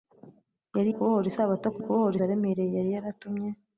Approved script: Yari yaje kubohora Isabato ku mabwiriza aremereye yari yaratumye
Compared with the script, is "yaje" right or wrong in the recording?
wrong